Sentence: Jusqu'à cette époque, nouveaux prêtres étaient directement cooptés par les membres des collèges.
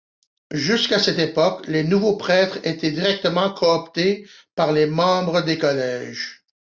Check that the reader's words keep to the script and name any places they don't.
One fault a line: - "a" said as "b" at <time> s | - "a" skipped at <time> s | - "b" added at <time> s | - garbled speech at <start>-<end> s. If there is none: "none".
- "les" added at 1.7 s